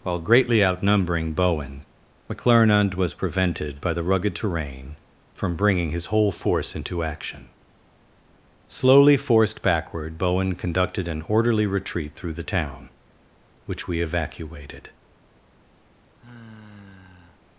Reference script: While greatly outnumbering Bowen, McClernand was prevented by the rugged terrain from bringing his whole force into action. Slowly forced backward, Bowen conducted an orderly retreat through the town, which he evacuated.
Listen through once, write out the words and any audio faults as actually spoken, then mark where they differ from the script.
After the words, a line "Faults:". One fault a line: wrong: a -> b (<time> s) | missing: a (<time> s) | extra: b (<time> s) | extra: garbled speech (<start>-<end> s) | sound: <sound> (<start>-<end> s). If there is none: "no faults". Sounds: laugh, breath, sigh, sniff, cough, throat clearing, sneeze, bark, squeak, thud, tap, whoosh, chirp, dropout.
While greatly outnumbering Bowen, McClernand was prevented by the rugged terrain from bringing his whole force into action. Slowly forced backward, Bowen conducted an orderly retreat through the town, which we evacuated.
Faults:
wrong: he -> we (13.9 s)
sound: sigh (16.1-17.4 s)